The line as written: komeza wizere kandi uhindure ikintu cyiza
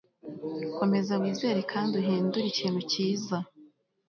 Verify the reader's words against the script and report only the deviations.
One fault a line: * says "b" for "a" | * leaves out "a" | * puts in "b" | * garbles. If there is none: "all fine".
all fine